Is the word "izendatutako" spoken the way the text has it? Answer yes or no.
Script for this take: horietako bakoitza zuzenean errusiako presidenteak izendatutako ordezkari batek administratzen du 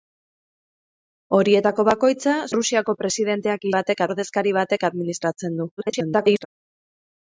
no